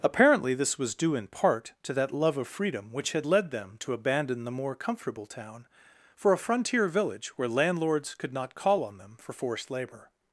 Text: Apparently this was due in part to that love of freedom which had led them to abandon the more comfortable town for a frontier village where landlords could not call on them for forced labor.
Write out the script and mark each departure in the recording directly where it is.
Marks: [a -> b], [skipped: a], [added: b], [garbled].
Apparently this was due in part to that love of freedom which had led them to abandon the more comfortable town for a frontier village where landlords could not call on them for forced labor.